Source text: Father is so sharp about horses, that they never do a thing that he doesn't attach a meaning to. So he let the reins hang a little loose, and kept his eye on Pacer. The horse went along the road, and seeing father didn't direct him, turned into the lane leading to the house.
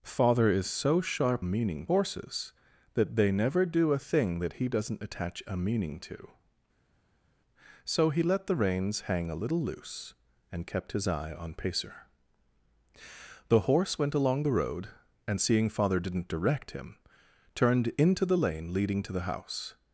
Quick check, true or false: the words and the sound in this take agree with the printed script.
false